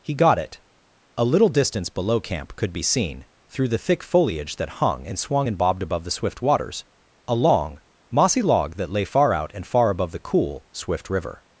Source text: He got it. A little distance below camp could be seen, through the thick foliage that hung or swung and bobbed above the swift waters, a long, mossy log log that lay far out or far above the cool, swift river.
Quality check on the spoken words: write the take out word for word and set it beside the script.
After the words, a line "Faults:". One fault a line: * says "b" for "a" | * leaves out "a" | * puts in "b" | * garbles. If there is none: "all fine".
He got it. A little distance below camp could be seen, through the thick foliage that hung and swung and bobbed above the swift waters, a long, mossy log that lay far out and far above the cool, swift river.
Faults:
* says "and" for "or"
* leaves out "log"
* says "and" for "or"